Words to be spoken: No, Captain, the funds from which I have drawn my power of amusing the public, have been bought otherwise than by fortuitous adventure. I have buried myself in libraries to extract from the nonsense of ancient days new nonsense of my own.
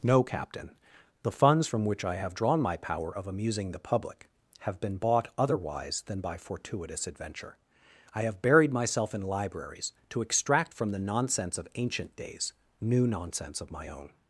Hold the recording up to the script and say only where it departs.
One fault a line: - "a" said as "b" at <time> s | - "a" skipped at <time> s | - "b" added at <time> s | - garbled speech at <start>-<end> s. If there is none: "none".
none